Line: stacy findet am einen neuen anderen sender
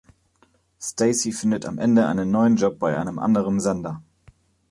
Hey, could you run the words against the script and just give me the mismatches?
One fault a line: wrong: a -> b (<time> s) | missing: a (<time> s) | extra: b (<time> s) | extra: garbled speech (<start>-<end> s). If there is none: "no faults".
extra: ende (1.8 s)
extra: job bei einem (2.5 s)